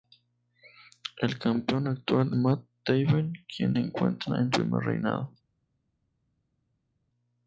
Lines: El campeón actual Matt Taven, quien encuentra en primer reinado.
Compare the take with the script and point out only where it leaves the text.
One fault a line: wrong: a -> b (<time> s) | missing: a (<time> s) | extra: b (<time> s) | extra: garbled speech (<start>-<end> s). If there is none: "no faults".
no faults